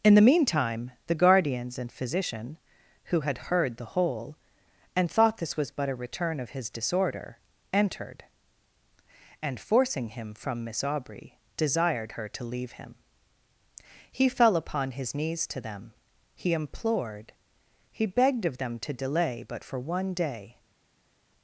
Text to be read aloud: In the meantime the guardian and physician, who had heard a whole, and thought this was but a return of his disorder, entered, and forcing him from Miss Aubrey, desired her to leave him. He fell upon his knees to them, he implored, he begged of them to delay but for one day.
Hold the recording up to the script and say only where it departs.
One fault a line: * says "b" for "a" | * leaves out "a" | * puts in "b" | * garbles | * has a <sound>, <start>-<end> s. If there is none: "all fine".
* says "guardians" for "guardian"
* says "the" for "a"